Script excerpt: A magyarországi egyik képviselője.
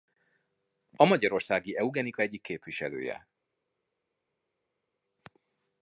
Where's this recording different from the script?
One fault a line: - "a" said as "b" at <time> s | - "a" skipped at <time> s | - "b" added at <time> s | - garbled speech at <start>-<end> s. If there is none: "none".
- "eugenika" added at 1.8 s